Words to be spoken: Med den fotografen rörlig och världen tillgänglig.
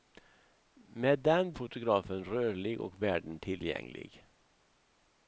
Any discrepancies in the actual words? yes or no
no